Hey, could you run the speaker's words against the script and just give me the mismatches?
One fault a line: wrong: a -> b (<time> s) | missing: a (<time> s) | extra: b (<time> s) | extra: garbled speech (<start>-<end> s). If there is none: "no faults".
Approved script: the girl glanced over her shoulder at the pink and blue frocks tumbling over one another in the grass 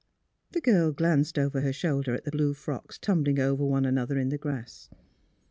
missing: pink and (2.3 s)